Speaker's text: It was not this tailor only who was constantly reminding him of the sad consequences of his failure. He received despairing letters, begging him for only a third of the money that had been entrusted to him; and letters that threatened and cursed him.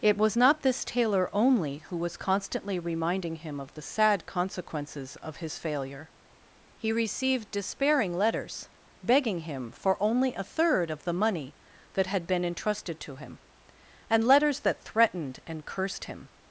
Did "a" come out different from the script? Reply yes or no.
no